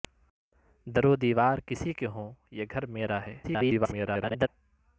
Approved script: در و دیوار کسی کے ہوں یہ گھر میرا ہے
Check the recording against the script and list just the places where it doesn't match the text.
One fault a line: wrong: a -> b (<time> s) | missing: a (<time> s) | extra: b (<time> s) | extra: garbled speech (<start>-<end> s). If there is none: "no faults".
extra: garbled speech (3.4-4.5 s)